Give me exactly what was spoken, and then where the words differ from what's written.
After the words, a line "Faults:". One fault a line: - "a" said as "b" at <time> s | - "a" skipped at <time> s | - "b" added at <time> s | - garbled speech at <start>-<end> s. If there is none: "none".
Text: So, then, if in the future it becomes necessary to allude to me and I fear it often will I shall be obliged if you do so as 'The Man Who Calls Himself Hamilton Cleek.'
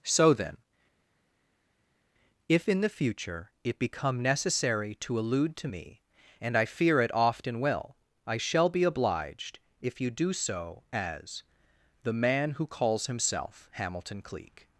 So, then, if in the future it become necessary to allude to me and I fear it often will I shall be obliged if you do so as 'The Man Who Calls Himself Hamilton Cleek.'
Faults:
- "becomes" said as "become" at 3.8 s